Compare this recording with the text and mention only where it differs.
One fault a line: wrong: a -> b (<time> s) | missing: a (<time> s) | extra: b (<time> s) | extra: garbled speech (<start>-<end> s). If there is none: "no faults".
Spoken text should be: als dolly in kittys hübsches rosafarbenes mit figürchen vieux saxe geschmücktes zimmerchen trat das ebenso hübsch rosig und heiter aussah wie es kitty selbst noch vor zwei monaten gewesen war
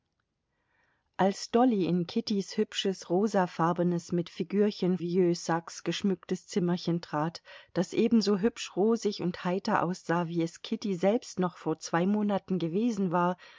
no faults